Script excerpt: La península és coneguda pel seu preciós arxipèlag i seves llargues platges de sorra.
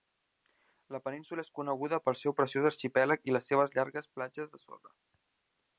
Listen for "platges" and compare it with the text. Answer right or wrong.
right